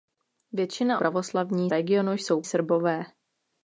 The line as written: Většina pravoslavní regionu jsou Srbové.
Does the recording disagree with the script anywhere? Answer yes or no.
no